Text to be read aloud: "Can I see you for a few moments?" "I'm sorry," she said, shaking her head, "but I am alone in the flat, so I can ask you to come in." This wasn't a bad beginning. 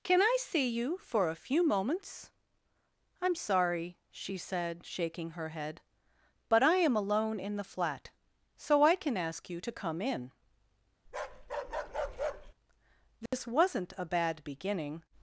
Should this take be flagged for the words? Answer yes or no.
no